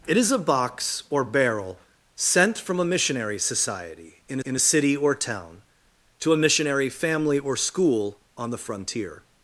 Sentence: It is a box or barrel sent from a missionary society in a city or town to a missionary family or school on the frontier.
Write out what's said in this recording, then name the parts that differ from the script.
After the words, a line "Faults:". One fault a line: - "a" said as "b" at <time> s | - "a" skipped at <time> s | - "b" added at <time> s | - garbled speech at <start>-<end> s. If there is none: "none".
It is a box or barrel sent from a missionary society in in a city or town to a missionary family or school on the frontier.
Faults:
- "in" added at 4.4 s